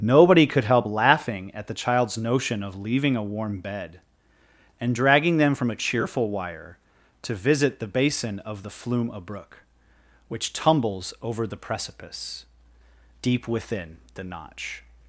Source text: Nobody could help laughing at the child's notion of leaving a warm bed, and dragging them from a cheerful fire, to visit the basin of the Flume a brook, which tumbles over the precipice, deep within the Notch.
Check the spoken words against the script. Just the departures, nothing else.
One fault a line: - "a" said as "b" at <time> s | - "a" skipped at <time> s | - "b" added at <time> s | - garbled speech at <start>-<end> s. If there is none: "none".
- "fire" said as "wire" at 6.3 s